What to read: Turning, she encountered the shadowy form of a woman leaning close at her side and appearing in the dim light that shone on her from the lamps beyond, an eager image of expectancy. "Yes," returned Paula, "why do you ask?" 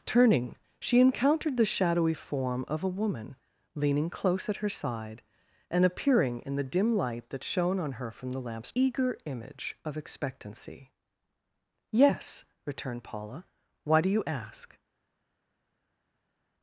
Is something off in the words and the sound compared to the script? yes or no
yes